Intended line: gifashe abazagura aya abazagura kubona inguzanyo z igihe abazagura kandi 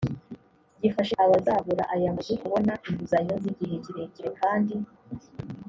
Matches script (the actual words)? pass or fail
fail